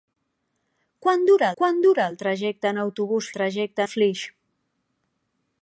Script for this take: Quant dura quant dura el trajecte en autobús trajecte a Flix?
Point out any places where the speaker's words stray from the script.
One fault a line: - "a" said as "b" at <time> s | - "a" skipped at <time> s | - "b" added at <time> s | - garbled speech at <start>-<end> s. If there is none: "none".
none